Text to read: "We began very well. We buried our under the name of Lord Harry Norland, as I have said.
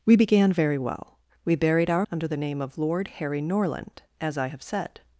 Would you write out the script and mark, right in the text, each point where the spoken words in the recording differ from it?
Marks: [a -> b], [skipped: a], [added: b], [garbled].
"We began very well. We buried our under the name of Lord Harry Norland, as I have said.